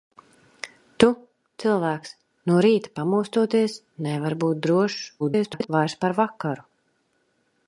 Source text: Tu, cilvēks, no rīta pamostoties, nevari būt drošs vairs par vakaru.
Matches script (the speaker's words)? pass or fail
fail